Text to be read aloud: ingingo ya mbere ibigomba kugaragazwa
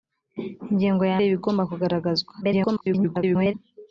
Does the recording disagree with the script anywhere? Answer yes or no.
yes